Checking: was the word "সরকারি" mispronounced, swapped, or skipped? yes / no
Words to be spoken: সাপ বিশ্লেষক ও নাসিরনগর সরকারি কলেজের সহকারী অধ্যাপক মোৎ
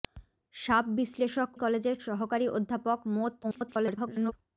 yes